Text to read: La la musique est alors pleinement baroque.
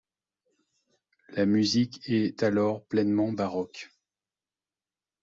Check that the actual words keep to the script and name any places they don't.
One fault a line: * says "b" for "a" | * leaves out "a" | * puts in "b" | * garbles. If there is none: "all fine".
* leaves out "la"